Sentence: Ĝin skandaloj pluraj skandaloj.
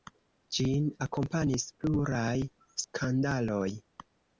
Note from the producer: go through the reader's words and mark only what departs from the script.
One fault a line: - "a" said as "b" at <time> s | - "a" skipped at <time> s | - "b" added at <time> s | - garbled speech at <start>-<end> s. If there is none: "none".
- "skandaloj" said as "akompanis" at 1.1 s